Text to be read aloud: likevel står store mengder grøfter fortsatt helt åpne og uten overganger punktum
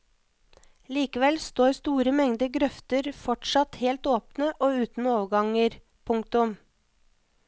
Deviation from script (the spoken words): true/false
false